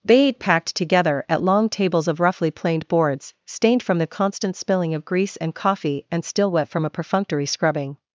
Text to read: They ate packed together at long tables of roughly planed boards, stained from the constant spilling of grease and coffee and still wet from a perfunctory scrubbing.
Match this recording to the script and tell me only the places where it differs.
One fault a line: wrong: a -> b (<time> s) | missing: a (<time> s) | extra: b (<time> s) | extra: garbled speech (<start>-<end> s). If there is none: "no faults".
no faults